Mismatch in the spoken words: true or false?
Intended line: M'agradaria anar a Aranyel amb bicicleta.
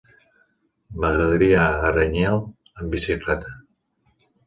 true